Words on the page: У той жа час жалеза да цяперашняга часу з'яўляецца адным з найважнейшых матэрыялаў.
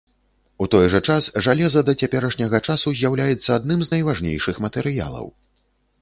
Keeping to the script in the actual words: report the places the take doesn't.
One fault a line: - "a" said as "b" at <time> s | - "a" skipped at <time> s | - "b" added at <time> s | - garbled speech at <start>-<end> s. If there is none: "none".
none